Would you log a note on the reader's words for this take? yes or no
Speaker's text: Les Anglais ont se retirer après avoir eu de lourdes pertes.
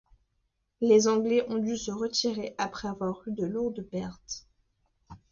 yes